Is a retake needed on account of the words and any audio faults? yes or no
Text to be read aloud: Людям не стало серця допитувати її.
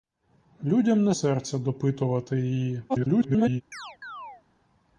yes